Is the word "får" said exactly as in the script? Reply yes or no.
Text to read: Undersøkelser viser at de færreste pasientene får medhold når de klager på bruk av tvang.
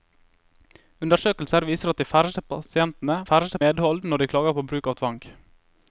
no